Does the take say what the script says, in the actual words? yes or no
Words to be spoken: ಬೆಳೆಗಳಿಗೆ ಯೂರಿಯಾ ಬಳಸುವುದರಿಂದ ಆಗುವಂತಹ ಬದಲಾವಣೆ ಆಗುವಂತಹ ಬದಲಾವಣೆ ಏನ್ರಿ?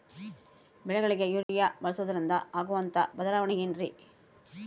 no